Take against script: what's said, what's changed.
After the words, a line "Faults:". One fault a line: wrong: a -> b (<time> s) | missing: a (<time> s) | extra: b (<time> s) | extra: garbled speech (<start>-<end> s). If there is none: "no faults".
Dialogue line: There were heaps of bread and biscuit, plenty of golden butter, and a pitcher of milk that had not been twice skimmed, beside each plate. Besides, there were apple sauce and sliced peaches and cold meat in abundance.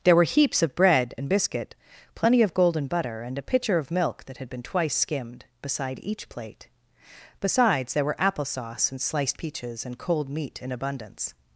There were heaps of bread and biscuit, plenty of golden butter, and a pitcher of milk that had been twice skimmed, beside each plate. Besides, there were apple sauce and sliced peaches and cold meat in abundance.
Faults:
missing: not (4.5 s)